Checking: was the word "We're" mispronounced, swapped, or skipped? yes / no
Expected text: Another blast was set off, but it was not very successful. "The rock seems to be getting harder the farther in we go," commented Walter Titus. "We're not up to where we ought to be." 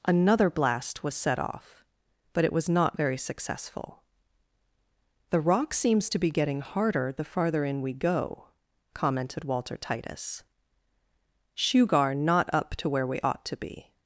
yes